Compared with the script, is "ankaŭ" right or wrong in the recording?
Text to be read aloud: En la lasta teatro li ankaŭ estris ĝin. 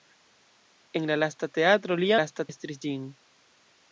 wrong